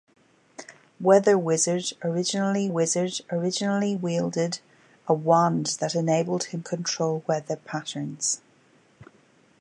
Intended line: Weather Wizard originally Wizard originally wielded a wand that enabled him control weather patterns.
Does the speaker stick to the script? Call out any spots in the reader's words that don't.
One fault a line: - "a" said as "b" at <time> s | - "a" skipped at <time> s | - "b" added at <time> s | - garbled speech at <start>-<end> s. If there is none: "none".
none